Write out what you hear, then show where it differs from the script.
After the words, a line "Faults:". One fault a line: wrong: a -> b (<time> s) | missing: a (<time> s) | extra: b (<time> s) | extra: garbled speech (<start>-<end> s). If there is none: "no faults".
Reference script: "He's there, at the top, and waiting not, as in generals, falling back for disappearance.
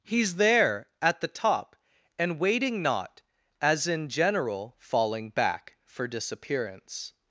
"He's there, at the top, and waiting not, as in general, falling back for disappearance.
Faults:
wrong: generals -> general (4.1 s)